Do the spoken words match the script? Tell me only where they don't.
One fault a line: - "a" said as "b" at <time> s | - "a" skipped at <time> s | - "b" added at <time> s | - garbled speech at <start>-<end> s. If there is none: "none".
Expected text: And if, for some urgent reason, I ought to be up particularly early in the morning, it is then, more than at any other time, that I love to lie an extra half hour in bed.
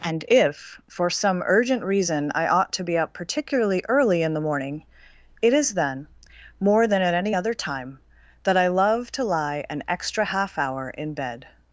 none